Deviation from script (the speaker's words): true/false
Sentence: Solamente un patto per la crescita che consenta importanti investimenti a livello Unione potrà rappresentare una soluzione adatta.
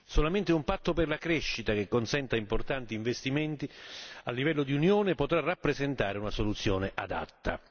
true